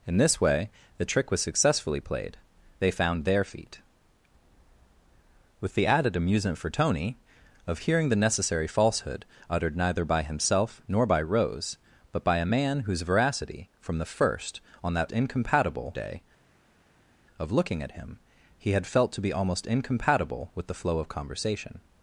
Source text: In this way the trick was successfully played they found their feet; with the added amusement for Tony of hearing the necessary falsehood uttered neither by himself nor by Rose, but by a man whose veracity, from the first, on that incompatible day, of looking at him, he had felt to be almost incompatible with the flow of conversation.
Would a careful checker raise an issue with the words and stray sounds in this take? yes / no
no